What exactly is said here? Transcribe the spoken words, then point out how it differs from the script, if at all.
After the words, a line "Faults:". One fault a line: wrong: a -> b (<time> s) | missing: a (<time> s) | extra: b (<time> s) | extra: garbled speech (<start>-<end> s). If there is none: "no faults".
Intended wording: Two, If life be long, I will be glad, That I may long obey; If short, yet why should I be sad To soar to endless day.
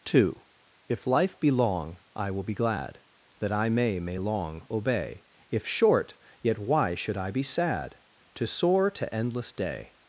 Two, If life be long, I will be glad, That I may may long obey; If short, yet why should I be sad To soar to endless day.
Faults:
extra: may (4.0 s)